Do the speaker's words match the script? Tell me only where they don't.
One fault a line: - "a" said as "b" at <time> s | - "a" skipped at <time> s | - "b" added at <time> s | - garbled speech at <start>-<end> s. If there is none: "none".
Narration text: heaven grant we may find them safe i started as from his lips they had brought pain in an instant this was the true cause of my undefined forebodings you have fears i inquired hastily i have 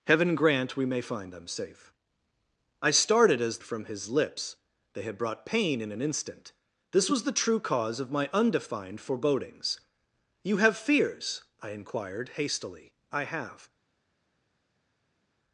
none